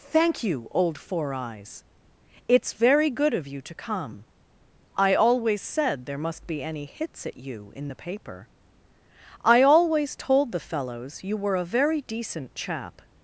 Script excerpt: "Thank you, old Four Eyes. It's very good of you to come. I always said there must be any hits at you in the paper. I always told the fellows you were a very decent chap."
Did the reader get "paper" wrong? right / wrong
right